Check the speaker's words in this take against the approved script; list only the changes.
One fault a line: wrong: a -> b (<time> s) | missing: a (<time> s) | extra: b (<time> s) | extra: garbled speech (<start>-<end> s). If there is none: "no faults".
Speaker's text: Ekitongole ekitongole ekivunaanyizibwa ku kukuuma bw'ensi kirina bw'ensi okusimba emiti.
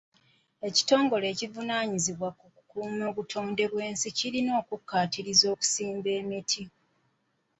missing: ekitongole (1.2 s)
extra: obutonde (3.1 s)
wrong: bw'ensi -> okukkaatiriza (4.6 s)